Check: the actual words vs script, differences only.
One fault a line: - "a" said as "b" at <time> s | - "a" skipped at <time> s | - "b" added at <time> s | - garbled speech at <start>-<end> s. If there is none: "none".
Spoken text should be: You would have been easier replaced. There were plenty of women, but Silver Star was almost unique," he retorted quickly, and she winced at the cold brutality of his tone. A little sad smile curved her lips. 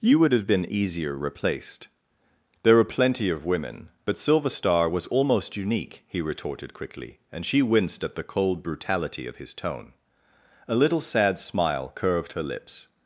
none